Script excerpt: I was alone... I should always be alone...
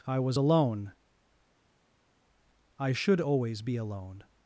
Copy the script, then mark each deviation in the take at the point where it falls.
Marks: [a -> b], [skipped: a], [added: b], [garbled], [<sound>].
I was alone... I should always be alone...